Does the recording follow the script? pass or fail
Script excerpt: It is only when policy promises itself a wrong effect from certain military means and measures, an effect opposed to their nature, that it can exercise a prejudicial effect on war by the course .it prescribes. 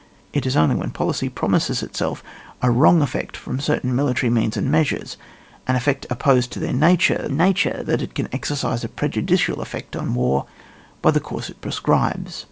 fail